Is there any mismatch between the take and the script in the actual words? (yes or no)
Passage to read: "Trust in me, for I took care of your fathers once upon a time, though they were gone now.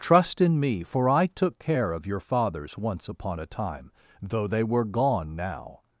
no